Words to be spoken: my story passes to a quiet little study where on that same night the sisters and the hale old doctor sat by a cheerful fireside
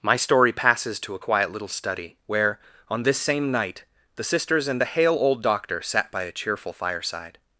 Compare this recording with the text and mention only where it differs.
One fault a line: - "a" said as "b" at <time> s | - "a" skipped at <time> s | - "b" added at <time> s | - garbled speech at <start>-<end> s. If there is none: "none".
- "that" said as "this" at 3.0 s